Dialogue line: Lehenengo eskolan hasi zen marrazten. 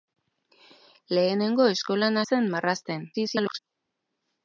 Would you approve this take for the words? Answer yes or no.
no